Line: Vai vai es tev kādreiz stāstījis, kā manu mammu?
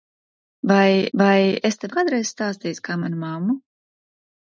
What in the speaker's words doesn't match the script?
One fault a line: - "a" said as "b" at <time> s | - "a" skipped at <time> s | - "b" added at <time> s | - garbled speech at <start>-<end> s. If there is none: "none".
none